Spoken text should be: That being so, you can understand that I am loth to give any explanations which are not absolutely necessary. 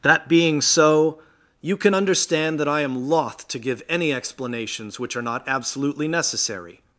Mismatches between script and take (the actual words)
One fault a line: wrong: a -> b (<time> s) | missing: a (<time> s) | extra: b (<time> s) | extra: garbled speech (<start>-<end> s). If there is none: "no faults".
no faults